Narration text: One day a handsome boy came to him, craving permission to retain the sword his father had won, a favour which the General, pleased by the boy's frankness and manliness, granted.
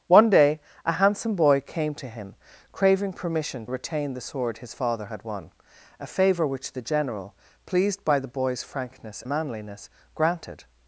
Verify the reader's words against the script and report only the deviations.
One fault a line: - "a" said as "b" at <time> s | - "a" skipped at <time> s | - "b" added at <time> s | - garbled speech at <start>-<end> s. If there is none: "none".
- "to" skipped at 3.6 s
- "and" skipped at 9.2 s